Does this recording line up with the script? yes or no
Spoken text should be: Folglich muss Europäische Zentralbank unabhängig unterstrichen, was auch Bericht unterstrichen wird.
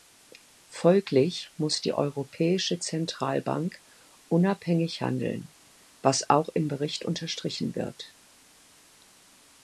no